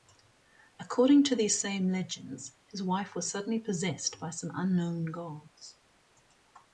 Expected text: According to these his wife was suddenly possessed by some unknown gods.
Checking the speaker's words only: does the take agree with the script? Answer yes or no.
no